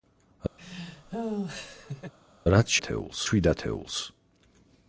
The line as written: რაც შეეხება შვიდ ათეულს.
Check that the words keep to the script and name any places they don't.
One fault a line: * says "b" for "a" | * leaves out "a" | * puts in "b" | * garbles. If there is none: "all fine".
* says "ათეულს" for "შეეხება"